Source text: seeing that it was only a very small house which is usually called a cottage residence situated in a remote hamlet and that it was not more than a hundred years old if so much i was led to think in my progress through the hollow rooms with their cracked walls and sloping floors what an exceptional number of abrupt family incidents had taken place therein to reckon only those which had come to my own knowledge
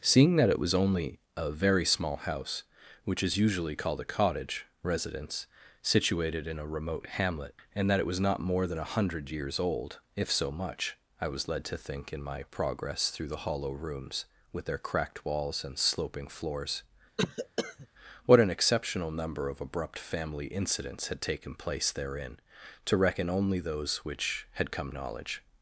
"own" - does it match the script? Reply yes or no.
no